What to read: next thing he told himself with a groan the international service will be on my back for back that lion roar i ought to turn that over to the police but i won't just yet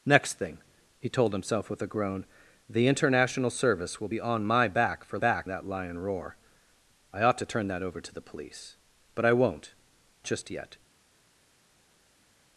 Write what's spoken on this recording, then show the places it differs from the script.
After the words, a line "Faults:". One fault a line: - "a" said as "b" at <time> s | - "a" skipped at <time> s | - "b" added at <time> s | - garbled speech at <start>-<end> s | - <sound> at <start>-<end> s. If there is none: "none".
next thing he told himself with a groan the international service will be on my back for back that lion roar i ought to turn that over to the police but i won't just yet
Faults:
none